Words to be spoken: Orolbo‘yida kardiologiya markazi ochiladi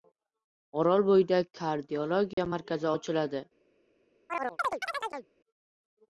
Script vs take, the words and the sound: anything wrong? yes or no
yes